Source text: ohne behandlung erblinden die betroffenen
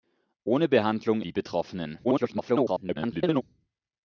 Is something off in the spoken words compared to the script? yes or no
yes